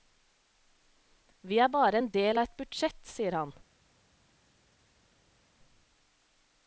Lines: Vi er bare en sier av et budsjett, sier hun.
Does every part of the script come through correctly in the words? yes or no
no